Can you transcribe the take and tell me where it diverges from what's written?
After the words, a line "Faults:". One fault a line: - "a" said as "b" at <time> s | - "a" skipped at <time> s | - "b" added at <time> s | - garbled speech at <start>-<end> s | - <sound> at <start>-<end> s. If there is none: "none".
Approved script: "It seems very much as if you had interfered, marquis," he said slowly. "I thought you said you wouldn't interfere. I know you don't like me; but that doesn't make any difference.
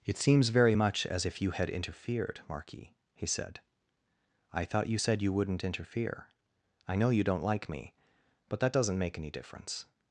"It seems very much as if you had interfered, marquis," he said. "I thought you said you wouldn't interfere. I know you don't like me; but that doesn't make any difference.
Faults:
- "slowly" skipped at 3.6 s